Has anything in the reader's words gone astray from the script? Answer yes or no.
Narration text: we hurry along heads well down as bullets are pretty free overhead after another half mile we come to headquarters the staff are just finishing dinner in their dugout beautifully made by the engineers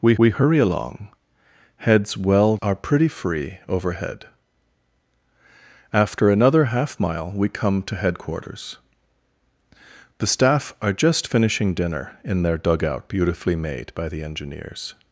yes